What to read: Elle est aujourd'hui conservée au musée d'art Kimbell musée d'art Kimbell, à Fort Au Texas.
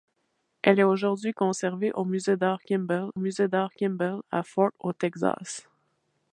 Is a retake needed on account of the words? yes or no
no